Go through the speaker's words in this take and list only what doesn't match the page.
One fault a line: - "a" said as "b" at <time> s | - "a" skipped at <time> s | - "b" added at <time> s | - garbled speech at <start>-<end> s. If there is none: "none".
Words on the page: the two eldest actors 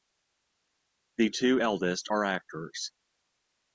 - "are" added at 2.1 s